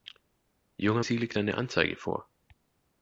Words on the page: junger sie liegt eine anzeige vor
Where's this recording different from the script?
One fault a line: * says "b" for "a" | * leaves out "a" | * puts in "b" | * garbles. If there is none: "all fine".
all fine